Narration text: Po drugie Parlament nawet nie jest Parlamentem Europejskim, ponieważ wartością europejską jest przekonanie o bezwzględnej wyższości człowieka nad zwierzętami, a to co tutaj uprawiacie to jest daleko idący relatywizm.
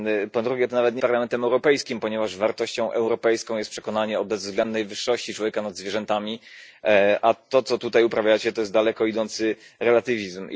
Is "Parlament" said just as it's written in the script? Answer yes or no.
no